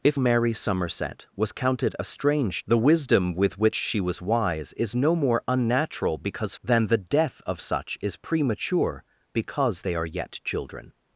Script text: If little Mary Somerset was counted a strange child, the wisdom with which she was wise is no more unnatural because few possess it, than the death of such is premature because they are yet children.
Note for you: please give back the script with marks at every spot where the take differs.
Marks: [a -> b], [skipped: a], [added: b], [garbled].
If [skipped: little] Mary Somerset was counted a strange [skipped: child,] the wisdom with which she was wise is no more unnatural because [skipped: few possess it,] than the death of such is premature because they are yet children.